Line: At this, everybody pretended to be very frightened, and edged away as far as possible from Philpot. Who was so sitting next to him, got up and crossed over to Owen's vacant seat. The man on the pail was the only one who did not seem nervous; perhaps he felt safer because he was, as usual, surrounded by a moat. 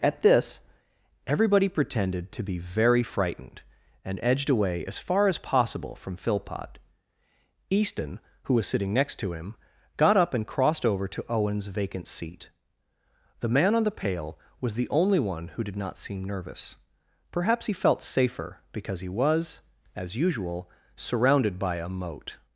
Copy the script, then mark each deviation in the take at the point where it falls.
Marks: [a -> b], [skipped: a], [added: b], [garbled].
At this, everybody pretended to be very frightened, and edged away as far as possible from Philpot. [added: Easton] Who was [skipped: so] sitting next to him, got up and crossed over to Owen's vacant seat. The man on the pail was the only one who did not seem nervous; perhaps he felt safer because he was, as usual, surrounded by a moat.